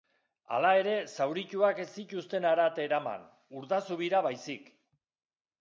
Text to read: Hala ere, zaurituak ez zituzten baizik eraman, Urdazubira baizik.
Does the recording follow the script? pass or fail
fail